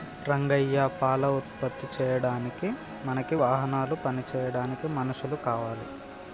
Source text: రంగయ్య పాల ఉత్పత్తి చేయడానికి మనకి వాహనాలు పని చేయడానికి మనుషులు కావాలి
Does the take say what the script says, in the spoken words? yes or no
yes